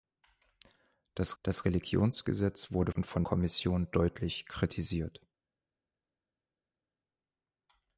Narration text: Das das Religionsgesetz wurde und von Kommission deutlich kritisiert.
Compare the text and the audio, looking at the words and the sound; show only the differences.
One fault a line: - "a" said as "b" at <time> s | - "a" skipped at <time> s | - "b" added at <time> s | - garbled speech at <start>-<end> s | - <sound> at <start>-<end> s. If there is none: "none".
none